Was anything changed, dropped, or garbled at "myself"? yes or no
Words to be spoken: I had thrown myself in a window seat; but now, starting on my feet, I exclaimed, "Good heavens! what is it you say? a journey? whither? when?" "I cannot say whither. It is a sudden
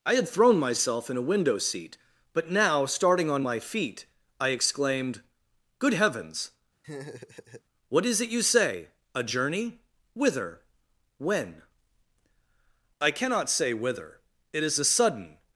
no